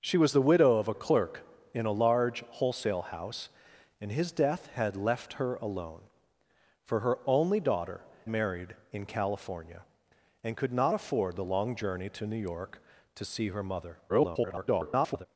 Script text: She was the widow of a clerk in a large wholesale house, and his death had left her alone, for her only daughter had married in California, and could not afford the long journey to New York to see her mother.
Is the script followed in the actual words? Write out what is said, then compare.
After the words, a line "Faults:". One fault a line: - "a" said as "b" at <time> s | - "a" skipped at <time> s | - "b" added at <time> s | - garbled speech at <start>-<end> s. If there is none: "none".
She was the widow of a clerk in a large wholesale house, and his death had left her alone, for her only daughter married in California, and could not afford the long journey to New York to see her mother. [garbled]
Faults:
- "had" skipped at 8.0 s
- garbled speech at 14.1-15.3 s